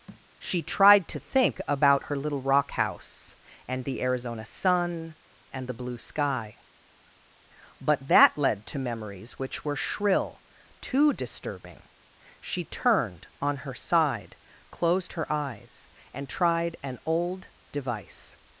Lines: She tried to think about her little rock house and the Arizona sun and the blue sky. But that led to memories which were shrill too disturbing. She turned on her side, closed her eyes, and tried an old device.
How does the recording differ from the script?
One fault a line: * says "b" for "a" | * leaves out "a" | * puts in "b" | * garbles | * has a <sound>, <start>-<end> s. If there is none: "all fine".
* has a thud, 0.1-0.3 s